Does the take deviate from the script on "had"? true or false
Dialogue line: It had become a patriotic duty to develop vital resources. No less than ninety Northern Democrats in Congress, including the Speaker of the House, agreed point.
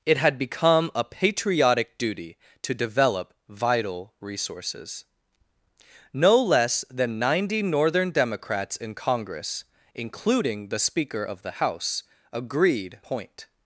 false